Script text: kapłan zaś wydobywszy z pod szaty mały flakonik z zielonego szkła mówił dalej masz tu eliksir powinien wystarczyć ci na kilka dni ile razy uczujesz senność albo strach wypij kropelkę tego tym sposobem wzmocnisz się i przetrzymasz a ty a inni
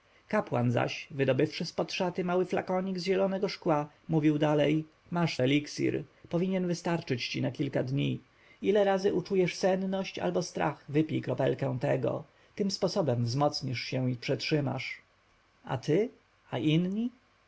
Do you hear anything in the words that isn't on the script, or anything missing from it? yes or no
yes